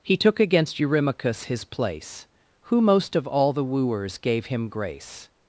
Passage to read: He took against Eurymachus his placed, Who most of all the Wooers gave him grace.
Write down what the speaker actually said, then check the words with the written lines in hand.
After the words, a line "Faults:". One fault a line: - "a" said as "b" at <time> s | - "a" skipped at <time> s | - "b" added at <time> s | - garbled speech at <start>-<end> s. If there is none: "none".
He took against Eurymachus his place, Who most of all the Wooers gave him grace.
Faults:
- "placed" said as "place" at 1.6 s